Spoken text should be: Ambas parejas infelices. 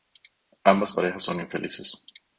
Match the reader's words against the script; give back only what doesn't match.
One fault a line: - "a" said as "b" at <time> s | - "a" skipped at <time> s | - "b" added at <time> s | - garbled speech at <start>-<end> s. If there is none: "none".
- "son" added at 1.2 s